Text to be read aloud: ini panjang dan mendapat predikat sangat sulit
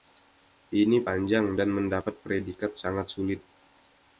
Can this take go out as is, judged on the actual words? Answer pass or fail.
pass